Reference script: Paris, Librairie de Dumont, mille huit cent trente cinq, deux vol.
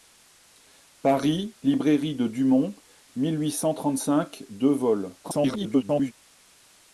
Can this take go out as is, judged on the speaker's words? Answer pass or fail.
fail